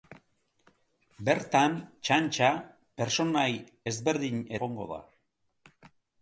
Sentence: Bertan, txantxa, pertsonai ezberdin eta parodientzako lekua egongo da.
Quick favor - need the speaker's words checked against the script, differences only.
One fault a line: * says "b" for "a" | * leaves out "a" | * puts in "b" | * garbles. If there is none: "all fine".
* leaves out "eta parodientzako lekua"